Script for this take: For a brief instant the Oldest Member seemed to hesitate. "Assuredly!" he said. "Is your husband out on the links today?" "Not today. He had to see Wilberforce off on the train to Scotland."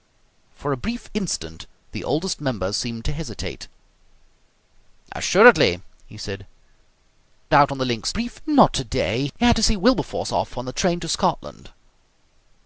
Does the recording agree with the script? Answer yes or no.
no